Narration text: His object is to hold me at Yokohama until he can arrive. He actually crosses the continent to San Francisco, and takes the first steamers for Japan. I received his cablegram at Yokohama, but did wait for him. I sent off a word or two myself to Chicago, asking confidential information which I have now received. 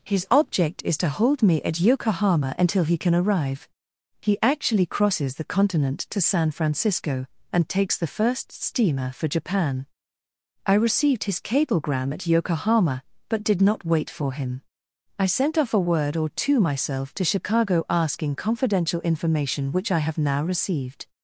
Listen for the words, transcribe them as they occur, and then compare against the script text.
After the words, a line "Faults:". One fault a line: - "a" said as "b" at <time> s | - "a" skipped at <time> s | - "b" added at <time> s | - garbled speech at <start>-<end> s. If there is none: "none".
His object is to hold me at Yokohama until he can arrive. He actually crosses the continent to San Francisco, and takes the first steamer for Japan. I received his cablegram at Yokohama, but did not wait for him. I sent off a word or two myself to Chicago, asking confidential information which I have now received.
Faults:
- "steamers" said as "steamer" at 8.5 s
- "not" added at 13.6 s